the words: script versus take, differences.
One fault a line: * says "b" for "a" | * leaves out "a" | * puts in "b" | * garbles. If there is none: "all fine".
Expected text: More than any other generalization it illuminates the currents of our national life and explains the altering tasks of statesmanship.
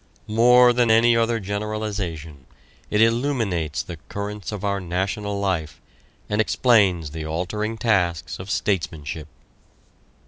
all fine